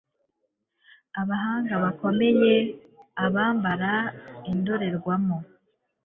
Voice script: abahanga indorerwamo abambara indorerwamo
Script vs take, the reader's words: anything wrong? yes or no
yes